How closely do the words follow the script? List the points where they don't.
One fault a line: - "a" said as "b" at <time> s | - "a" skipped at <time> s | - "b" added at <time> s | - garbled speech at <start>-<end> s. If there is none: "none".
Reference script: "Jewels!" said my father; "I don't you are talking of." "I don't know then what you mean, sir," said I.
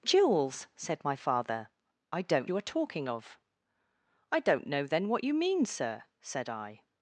none